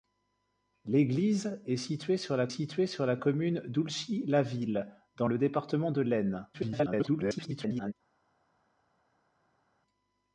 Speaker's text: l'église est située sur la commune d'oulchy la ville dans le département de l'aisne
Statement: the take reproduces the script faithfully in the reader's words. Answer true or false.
false